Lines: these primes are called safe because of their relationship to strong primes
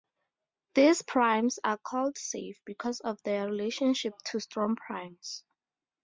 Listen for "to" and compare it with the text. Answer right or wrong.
right